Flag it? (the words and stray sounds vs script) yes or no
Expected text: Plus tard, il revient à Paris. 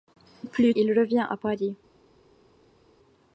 yes